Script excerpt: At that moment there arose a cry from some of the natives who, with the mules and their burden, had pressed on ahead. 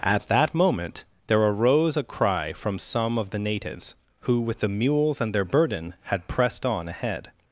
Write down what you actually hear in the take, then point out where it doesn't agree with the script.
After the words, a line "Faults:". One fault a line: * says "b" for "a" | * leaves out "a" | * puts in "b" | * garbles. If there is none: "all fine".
At that moment there arose a cry from some of the natives who, with the mules and their burden, had pressed on ahead.
Faults:
all fine